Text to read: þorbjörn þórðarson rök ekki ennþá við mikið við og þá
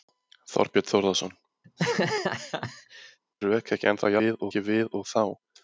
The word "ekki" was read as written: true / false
true